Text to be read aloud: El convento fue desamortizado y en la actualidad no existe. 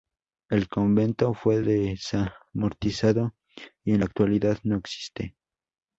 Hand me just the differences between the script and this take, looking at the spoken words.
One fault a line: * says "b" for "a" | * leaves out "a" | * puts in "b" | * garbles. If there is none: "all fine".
all fine